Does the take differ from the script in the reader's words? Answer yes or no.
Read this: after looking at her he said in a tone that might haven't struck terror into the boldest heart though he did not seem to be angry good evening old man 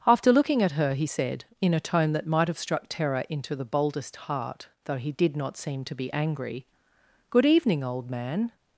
yes